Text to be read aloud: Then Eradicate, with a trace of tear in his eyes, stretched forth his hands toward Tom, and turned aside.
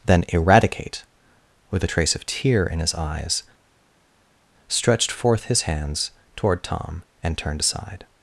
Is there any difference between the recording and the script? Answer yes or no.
no